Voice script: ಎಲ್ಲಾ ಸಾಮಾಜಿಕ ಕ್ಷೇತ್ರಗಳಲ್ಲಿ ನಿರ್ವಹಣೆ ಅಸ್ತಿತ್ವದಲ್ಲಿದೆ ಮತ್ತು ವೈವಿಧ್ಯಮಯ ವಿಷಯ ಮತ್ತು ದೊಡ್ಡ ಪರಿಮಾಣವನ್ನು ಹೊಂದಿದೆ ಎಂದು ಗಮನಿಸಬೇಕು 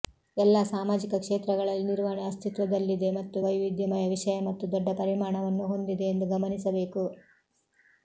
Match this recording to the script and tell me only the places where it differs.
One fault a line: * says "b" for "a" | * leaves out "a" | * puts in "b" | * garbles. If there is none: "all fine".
all fine